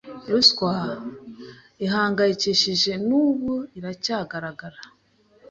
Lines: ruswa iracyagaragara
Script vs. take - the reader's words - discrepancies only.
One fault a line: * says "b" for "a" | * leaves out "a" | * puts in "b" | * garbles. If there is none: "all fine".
* puts in "ihangayikishije n'ubu"